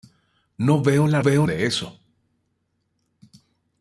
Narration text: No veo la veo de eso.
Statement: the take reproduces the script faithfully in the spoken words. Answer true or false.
true